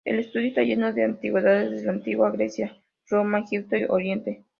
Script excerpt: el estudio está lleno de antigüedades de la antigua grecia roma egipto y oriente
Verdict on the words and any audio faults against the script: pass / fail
pass